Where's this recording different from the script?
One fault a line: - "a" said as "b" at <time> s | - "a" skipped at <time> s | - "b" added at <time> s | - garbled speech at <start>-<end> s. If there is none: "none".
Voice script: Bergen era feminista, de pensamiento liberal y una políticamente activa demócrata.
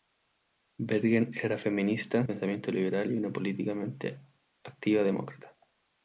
- "de" skipped at 2.2 s